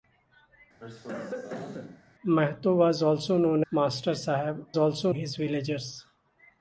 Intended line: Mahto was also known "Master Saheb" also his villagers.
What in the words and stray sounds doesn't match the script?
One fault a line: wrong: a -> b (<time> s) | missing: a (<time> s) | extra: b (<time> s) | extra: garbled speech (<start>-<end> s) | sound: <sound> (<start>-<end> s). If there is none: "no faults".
sound: cough (0.8-2.0 s)